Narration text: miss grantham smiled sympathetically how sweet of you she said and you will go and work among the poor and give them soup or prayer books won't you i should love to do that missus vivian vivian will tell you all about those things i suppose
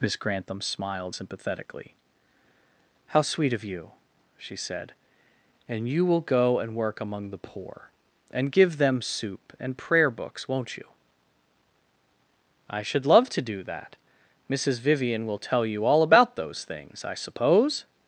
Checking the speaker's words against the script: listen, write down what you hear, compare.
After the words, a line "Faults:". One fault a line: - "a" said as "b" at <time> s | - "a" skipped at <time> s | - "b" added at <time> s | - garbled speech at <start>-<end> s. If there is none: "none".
miss grantham smiled sympathetically how sweet of you she said and you will go and work among the poor and give them soup and prayer books won't you i should love to do that missus vivian will tell you all about those things i suppose
Faults:
- "or" said as "and" at 9.6 s
- "vivian" skipped at 15.3 s